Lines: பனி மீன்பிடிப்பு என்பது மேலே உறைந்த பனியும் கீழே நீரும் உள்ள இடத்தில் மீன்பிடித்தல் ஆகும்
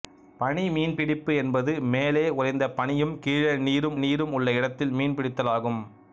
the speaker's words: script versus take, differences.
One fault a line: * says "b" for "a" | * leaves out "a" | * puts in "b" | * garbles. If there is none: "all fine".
* puts in "நீரும்"